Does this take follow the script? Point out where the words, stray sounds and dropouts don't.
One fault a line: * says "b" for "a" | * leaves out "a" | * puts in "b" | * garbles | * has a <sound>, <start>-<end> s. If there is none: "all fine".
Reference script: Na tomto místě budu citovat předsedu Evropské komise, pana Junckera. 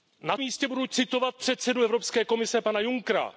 * leaves out "tomto"